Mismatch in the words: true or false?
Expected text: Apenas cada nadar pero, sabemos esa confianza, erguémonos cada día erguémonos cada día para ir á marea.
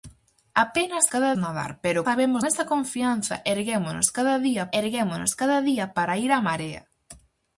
false